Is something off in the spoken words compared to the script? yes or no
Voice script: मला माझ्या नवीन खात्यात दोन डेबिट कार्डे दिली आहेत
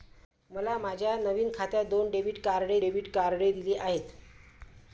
yes